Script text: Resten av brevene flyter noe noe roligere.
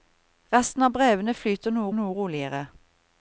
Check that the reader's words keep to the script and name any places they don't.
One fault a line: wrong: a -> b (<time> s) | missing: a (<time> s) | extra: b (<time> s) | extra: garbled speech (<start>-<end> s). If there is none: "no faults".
no faults